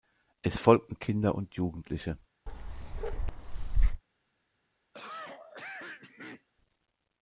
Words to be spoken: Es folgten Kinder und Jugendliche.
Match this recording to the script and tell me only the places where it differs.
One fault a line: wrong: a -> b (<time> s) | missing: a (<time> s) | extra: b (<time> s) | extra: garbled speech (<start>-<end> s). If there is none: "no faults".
no faults